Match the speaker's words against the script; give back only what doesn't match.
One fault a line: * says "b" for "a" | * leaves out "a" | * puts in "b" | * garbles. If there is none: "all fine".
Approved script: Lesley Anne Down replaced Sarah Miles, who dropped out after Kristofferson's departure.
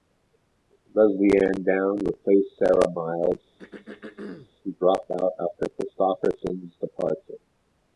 all fine